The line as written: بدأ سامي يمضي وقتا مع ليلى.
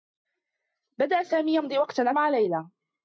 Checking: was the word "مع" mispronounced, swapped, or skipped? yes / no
no